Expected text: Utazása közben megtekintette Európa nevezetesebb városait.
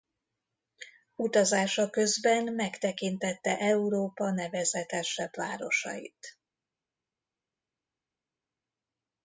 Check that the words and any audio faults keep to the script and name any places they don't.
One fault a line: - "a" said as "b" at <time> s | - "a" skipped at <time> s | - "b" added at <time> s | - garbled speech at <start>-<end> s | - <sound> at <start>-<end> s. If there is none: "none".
none